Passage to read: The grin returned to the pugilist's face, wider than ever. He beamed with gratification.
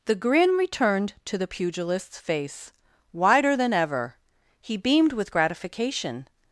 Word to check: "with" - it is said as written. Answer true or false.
true